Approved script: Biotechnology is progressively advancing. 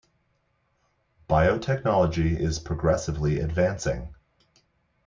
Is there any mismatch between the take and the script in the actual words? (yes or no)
no